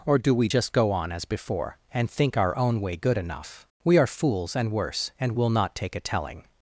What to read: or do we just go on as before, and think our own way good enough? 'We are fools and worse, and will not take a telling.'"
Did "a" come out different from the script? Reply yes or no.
no